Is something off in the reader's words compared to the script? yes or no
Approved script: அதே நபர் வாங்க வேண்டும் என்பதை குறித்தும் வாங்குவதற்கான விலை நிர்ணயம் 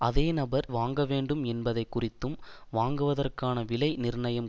no